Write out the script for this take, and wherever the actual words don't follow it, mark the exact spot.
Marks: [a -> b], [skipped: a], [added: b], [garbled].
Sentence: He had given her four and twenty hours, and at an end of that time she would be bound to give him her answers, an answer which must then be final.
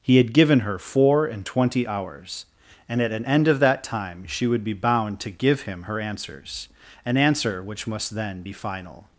He had given her four and twenty hours, and at an end of that time she would be bound to give him her answers, an answer which must then be final.